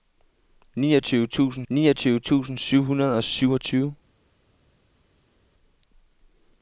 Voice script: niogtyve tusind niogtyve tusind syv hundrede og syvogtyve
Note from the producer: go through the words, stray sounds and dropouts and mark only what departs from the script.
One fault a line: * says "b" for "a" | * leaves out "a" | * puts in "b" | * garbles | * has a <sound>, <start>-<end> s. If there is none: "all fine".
all fine